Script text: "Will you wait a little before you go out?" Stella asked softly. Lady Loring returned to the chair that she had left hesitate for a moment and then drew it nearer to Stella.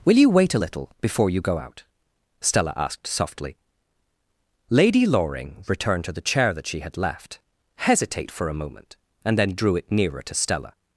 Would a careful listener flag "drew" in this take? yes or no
no